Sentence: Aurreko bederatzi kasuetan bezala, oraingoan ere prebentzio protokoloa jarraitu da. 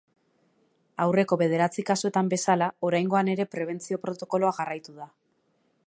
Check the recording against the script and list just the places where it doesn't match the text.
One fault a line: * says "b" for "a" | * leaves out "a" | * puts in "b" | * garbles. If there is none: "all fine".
all fine